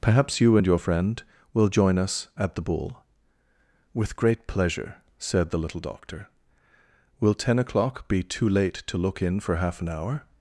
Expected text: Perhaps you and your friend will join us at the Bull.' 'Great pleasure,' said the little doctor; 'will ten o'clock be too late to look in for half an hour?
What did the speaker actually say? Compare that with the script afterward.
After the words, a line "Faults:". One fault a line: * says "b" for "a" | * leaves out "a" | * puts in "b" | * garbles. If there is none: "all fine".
Perhaps you and your friend will join us at the Bull.' 'With great pleasure,' said the little doctor; 'will ten o'clock be too late to look in for half an hour?
Faults:
* puts in "With"